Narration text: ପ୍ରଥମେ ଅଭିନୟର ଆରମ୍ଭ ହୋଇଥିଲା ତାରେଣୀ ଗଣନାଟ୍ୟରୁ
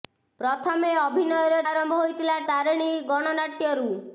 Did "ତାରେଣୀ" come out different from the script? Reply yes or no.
no